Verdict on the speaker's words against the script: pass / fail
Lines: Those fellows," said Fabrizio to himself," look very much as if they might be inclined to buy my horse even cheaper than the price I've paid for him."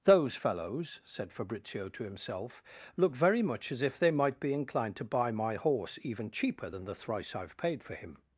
fail